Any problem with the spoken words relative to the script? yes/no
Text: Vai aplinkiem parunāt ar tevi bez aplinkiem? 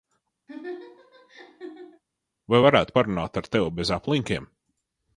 yes